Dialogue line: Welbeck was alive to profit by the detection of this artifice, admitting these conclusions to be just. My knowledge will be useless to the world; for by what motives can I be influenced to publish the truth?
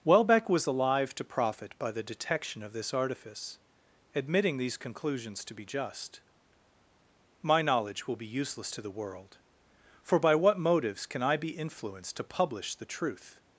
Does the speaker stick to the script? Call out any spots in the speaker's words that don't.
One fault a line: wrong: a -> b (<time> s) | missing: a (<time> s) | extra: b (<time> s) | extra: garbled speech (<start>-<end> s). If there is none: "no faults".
no faults